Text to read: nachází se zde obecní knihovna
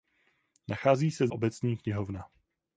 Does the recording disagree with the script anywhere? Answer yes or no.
yes